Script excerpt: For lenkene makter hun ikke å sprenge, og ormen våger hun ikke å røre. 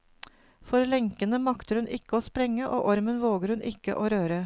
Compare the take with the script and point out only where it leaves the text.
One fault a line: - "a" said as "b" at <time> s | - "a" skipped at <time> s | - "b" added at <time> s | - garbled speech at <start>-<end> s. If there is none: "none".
none